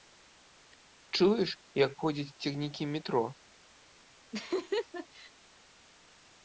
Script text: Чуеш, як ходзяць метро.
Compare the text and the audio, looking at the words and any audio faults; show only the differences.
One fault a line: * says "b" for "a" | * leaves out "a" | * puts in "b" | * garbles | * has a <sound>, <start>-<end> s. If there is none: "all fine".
* puts in "цягнікі"
* has a laugh, 4.3-5.3 s